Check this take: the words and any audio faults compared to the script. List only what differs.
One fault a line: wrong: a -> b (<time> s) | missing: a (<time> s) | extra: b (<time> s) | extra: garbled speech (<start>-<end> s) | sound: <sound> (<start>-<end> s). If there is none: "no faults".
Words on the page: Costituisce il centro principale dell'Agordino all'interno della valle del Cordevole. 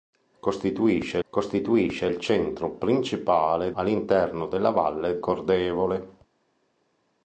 extra: costituisce (1.3 s)
missing: dell'Agordino (3.7 s)
missing: del (5.2 s)